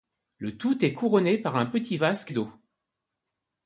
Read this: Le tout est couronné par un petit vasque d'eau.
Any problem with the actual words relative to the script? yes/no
no